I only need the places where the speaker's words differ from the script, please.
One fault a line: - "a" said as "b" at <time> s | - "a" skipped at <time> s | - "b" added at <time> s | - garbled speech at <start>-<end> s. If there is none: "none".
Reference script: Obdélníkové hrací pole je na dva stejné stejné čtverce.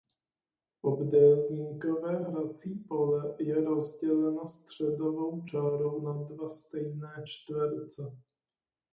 - "rozděleno středovou čárou" added at 3.6 s
- "stejné" skipped at 7.3 s